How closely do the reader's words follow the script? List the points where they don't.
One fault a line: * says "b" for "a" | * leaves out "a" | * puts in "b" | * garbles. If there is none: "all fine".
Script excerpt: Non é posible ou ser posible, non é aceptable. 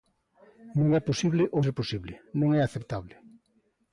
all fine